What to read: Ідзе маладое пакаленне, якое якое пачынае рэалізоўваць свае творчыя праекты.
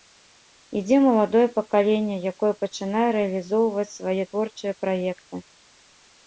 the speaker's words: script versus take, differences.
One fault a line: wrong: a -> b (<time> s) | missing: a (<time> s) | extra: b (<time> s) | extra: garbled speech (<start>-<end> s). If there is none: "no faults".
missing: якое (2.5 s)